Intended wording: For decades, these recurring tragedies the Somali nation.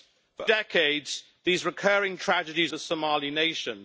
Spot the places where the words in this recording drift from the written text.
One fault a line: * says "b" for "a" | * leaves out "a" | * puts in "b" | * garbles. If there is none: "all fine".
all fine